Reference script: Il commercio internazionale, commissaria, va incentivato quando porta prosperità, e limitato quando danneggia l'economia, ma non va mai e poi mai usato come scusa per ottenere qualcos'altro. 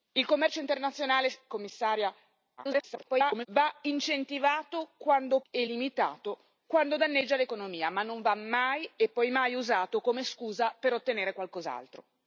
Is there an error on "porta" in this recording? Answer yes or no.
yes